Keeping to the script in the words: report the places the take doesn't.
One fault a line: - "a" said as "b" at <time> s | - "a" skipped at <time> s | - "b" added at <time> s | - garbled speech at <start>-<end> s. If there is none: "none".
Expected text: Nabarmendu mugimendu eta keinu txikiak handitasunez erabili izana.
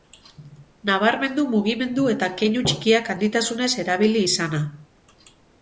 none